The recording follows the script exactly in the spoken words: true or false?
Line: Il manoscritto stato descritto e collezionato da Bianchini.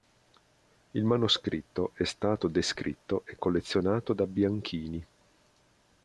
false